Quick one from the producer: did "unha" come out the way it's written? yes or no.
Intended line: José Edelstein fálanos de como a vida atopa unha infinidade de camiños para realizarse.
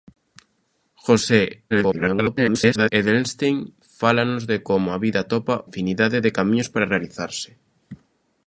no